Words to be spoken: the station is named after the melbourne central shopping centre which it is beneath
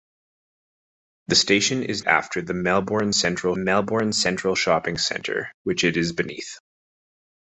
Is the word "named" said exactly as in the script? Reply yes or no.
no